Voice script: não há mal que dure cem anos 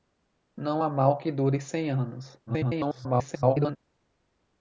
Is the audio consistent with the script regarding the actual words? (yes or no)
no